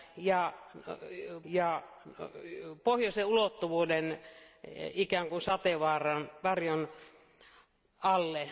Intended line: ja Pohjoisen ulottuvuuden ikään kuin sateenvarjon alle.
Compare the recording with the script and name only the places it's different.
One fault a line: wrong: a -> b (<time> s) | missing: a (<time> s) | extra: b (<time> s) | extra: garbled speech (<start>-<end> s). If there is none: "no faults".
extra: ja (1.4 s)